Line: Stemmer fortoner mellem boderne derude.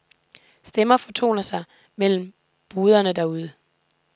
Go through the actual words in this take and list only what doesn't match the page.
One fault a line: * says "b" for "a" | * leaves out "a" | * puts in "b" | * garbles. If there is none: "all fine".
* puts in "sig"